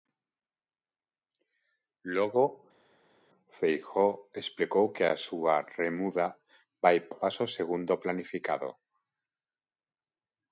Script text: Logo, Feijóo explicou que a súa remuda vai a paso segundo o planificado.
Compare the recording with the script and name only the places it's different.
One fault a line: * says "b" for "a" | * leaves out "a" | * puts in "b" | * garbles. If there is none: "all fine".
all fine